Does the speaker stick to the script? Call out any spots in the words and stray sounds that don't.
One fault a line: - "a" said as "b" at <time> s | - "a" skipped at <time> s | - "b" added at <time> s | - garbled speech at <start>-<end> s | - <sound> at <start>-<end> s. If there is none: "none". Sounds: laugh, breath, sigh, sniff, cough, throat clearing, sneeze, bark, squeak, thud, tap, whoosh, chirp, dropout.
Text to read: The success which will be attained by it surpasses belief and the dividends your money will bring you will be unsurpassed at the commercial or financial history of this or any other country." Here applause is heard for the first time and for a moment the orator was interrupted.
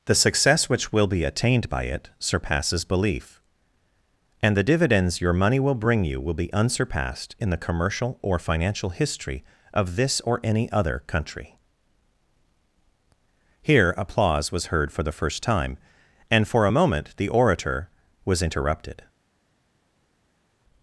- "at" said as "in" at 7.4 s
- "is" said as "was" at 14.5 s